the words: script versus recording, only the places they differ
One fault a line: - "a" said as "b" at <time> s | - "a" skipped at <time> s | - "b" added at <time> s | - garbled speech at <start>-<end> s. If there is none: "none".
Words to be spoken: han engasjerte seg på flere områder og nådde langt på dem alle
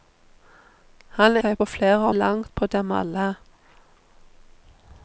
- "engasjerte" skipped at 1.4 s
- "områder og nådde" skipped at 2.1 s